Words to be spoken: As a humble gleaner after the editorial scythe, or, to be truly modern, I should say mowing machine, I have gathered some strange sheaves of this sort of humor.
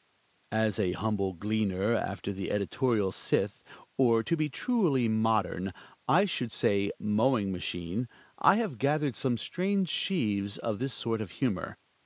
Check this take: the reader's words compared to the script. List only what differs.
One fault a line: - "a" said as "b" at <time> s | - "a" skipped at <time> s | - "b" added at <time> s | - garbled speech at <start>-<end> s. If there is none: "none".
none